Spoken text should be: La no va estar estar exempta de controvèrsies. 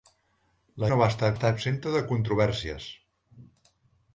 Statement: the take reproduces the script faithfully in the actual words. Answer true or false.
true